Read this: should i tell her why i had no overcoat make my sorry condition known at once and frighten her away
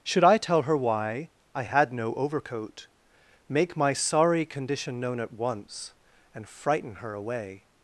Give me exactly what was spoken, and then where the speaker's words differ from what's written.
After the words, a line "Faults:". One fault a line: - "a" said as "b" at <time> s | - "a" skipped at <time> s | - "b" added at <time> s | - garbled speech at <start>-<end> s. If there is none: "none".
should i tell her why i had no overcoat make my sorry condition known at once and frighten her away
Faults:
none